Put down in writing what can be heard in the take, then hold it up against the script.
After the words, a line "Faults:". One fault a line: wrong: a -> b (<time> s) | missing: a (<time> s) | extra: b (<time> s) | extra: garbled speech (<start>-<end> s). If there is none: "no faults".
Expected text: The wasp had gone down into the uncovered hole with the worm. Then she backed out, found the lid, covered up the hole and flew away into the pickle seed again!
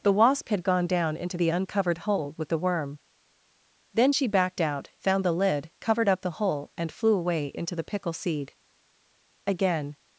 The wasp had gone down into the uncovered hole with the worm. Then she backed out, found the lid, covered up the hole and flew away into the pickle seed again!
Faults:
no faults